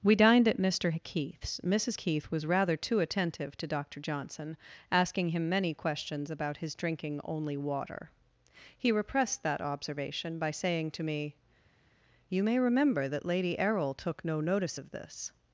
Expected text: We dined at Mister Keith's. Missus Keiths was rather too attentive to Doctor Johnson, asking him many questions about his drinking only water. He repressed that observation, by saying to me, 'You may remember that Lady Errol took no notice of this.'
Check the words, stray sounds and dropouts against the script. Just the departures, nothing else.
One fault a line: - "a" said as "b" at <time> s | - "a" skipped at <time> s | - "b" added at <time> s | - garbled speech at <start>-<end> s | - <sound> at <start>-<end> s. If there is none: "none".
- "Keiths" said as "Keith" at 1.9 s